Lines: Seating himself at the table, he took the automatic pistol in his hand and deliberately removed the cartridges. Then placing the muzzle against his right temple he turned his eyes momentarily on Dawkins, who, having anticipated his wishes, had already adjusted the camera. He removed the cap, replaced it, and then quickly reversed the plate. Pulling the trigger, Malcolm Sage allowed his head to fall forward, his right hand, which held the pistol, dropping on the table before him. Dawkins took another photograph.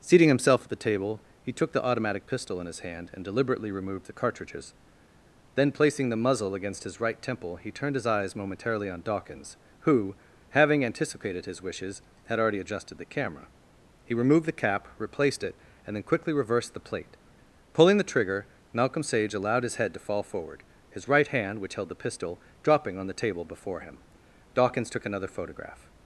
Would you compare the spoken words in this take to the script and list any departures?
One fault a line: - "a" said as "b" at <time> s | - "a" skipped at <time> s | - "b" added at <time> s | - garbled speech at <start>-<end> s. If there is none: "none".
none